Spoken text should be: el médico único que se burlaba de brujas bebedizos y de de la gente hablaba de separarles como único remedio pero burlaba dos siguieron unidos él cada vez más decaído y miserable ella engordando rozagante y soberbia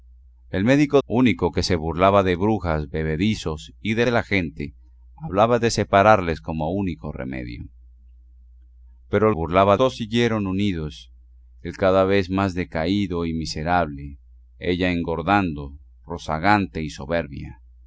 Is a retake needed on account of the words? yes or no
no